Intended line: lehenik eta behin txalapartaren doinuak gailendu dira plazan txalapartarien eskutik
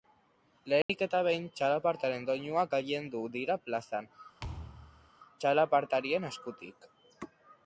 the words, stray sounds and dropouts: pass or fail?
fail